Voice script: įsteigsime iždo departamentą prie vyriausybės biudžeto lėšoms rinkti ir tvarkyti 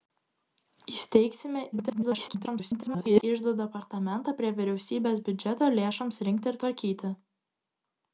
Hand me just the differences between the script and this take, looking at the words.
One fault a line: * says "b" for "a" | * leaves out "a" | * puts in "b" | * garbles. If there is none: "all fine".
* garbles